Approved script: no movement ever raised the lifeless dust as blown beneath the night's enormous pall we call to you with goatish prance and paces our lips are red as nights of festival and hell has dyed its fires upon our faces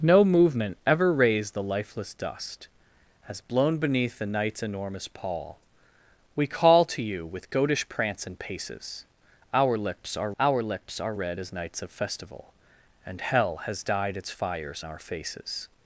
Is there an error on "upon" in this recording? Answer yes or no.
yes